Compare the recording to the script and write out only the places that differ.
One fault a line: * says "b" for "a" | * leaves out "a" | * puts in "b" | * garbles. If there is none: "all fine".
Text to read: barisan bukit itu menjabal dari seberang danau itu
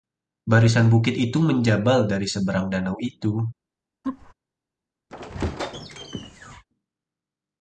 all fine